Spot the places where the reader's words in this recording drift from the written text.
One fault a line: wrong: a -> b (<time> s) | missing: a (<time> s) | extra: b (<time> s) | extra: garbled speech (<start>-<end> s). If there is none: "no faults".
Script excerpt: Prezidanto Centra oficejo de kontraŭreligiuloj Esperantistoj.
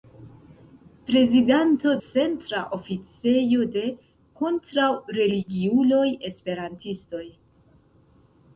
no faults